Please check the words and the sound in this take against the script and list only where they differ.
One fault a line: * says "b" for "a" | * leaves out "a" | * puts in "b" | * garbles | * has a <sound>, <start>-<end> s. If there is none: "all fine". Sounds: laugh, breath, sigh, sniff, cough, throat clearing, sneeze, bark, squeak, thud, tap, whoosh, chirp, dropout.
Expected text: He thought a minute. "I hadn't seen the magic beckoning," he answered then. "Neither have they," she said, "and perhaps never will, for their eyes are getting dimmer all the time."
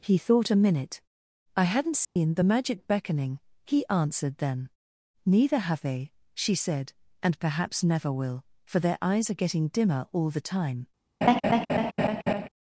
* has a dropout, 2.0-2.2 s
* has a laugh, 11.2-12.5 s